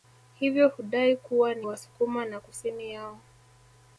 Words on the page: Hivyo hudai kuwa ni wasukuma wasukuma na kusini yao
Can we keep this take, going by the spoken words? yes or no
no